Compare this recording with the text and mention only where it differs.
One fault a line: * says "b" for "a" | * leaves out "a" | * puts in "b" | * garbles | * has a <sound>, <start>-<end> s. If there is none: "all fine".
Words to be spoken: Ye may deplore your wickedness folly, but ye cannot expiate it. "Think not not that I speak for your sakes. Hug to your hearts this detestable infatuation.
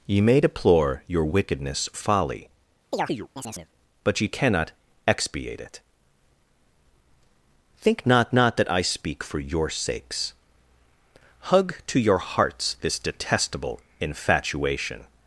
* has a chirp, 2.9-3.7 s